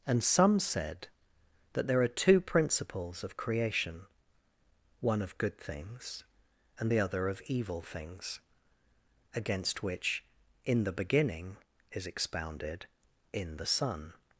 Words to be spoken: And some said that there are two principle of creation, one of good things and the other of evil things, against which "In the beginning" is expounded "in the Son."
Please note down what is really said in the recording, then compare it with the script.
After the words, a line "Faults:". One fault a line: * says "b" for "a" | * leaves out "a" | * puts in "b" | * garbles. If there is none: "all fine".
And some said that there are two principles of creation, one of good things and the other of evil things, against which "In the beginning" is expounded "in the Son."
Faults:
* says "principles" for "principle"